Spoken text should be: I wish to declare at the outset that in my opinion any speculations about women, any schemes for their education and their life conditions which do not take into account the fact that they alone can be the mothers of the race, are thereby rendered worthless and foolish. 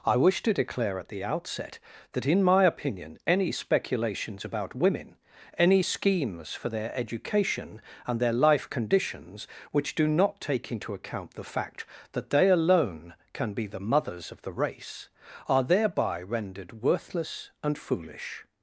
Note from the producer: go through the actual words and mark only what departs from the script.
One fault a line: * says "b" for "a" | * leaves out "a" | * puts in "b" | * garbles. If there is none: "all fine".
all fine